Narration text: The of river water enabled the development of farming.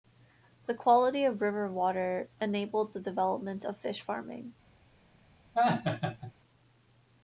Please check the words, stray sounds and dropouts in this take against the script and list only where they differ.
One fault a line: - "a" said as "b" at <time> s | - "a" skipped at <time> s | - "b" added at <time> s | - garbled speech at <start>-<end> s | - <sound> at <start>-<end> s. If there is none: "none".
- "quality" added at 0.7 s
- "fish" added at 3.8 s
- laugh at 5.5-6.3 s